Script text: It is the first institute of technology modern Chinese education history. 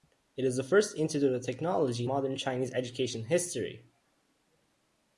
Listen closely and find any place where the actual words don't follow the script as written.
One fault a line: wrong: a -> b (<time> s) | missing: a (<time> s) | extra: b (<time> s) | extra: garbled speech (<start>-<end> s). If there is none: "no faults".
no faults